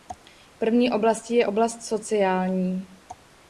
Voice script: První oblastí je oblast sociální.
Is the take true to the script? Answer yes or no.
yes